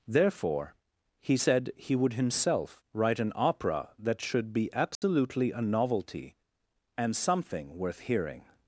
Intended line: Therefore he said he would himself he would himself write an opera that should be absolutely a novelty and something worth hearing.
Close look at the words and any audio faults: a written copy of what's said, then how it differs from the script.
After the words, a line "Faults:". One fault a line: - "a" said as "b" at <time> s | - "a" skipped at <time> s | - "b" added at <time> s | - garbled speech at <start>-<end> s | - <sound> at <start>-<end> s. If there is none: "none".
Therefore he said he would himself write an opera that should be absolutely a novelty and something worth hearing.
Faults:
- "he would himself" skipped at 2.8 s
- dropout at 4.9-5.0 s